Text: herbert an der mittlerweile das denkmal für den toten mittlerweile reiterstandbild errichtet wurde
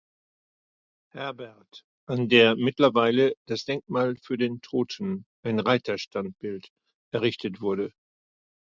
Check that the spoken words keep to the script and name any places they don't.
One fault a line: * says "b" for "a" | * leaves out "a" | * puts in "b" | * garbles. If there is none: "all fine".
* says "ein" for "mittlerweile"